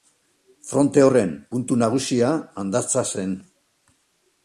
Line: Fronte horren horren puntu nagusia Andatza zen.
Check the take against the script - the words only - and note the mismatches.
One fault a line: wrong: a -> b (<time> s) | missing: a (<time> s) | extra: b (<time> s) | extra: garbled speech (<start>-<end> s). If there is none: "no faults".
missing: horren (1.3 s)